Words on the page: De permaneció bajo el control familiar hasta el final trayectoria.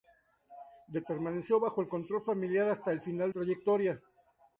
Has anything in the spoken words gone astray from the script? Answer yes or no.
no